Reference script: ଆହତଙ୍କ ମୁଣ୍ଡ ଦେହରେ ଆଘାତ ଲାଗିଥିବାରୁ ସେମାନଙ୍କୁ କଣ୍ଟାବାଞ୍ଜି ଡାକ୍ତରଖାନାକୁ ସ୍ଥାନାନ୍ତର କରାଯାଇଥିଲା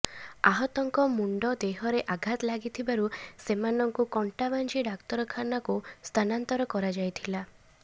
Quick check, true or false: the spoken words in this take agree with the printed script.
true